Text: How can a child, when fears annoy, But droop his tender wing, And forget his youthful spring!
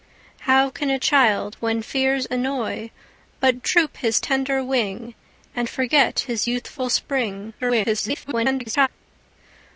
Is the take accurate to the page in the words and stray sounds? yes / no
no